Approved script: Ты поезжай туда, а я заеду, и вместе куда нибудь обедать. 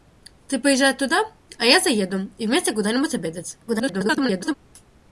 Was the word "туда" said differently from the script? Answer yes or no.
no